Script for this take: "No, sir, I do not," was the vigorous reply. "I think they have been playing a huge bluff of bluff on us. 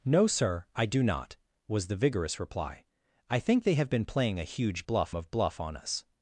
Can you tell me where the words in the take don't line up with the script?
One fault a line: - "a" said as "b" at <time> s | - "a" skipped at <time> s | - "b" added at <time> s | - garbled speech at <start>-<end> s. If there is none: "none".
none